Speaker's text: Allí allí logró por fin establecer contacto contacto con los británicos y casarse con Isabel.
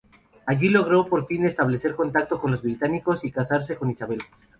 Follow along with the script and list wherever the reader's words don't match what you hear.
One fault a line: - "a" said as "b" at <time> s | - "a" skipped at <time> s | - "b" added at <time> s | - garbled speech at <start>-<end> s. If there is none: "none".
- "allí" skipped at 0.7 s
- "contacto" skipped at 2.4 s